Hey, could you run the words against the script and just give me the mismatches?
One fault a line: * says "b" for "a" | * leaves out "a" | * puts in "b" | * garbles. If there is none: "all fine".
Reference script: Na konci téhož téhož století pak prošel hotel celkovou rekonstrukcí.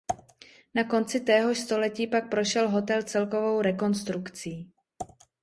* leaves out "téhož"